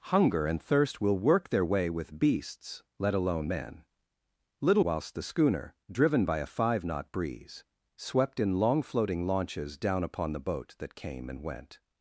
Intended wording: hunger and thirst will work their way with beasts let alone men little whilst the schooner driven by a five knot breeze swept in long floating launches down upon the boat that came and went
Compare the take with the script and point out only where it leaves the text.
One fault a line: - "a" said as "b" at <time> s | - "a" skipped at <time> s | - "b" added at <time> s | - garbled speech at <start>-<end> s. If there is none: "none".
none